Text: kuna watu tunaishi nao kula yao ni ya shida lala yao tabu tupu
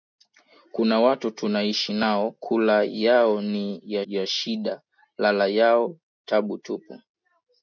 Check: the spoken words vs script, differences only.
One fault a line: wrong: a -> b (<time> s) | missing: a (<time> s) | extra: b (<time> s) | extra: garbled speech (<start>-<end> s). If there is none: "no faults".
extra: ya (4.1 s)